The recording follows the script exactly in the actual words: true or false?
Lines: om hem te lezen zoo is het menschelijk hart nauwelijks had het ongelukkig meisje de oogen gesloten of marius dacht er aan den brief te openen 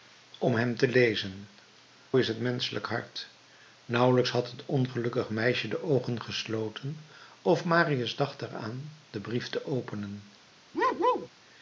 false